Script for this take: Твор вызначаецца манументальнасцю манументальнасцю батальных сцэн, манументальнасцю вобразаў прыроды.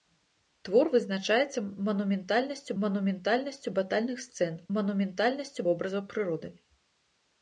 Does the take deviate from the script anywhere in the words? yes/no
no